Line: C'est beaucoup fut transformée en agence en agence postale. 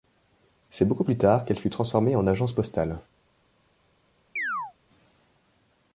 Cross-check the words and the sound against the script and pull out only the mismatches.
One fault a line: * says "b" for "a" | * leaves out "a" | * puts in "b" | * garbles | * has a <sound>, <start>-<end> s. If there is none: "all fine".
* puts in "plus tard qu'elle"
* leaves out "en agence"
* has a chirp, 4.4-4.7 s